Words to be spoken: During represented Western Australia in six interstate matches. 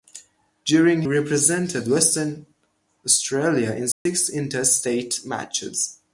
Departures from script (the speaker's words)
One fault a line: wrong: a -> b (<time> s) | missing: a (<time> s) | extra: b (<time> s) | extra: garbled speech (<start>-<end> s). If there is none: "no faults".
no faults